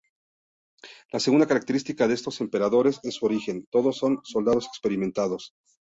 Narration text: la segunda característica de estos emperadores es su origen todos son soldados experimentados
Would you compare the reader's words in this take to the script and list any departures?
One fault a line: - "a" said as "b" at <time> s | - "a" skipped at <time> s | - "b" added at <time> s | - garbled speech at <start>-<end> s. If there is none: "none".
none